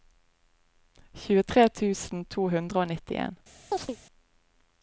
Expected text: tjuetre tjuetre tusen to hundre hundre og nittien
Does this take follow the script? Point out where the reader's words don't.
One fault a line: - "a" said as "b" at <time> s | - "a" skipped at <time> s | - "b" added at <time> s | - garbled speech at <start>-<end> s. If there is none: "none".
- "tjuetre" skipped at 1.6 s
- "hundre" skipped at 2.8 s